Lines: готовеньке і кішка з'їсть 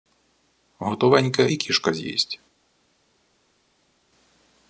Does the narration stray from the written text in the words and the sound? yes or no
no